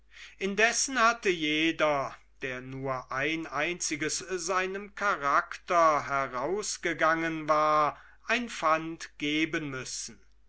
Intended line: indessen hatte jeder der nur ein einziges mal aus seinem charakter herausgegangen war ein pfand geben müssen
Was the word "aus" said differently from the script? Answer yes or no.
yes